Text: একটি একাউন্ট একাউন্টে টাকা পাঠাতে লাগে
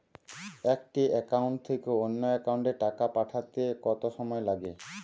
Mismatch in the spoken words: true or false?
true